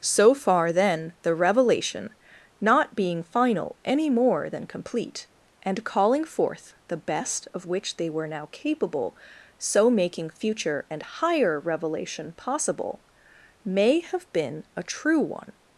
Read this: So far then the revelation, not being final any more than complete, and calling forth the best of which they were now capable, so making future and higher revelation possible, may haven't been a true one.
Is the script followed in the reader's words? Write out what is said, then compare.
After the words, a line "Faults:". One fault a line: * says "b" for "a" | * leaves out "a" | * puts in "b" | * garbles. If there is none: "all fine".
So far then the revelation, not being final any more than complete, and calling forth the best of which they were now capable, so making future and higher revelation possible, may have been a true one.
Faults:
* says "have" for "haven't"